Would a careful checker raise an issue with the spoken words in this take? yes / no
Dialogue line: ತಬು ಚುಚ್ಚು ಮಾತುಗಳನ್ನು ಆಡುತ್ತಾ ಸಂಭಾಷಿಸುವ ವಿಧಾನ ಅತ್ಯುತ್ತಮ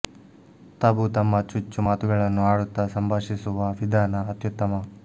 yes